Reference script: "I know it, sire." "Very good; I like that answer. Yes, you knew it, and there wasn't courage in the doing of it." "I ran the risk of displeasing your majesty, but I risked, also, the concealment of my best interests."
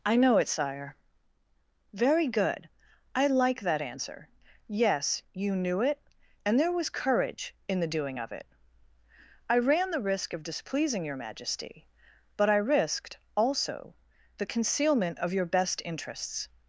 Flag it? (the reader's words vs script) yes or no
yes